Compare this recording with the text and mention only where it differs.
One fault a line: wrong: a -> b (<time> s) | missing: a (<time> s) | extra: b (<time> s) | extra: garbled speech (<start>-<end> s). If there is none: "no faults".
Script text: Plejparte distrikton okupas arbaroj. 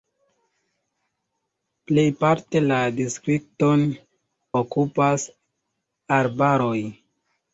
extra: la (2.7 s)